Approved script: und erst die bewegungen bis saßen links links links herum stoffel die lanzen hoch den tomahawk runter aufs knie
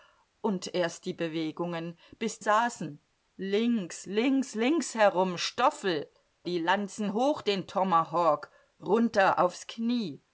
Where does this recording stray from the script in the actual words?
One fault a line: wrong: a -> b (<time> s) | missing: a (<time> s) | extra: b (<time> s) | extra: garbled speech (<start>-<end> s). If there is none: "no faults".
no faults